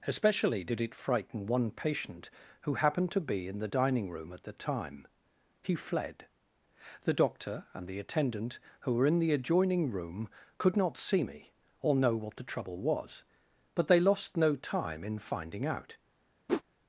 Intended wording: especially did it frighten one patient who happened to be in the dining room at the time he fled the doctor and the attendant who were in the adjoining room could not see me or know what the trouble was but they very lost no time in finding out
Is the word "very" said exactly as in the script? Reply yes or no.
no